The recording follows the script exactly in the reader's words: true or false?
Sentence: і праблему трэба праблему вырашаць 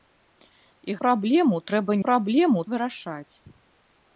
true